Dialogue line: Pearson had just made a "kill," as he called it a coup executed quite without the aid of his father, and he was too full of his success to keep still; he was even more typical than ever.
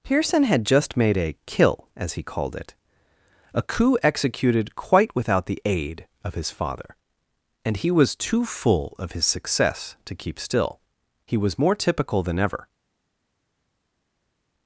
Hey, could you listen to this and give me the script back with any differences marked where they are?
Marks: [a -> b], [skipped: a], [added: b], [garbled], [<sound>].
Pearson had just made a "kill," as he called it a coup executed quite without the aid of his father, and he was too full of his success to keep still; he was [skipped: even] more typical than ever.